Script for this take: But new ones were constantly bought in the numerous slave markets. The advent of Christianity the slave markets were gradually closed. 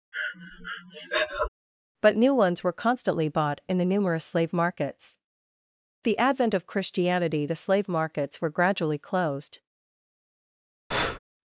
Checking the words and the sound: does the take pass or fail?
fail